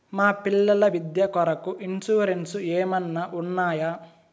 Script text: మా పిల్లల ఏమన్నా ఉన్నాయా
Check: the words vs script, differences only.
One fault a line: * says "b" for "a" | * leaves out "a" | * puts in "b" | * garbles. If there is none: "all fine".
* puts in "విద్య కొరకు ఇన్సూరెన్సు"